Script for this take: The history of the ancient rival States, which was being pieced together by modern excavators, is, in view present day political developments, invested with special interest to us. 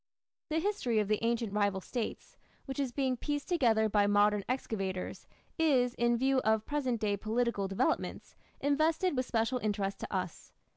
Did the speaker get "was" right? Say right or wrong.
wrong